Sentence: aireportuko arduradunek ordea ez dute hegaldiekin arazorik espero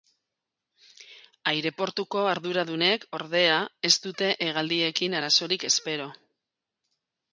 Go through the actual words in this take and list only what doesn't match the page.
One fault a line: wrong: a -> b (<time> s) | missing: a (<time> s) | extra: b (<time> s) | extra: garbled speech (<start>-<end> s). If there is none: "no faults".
no faults